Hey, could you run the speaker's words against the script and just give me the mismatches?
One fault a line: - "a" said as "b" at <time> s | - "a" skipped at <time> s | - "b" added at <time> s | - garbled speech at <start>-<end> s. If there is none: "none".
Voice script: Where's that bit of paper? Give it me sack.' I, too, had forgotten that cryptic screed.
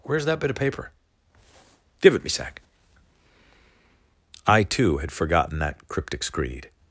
none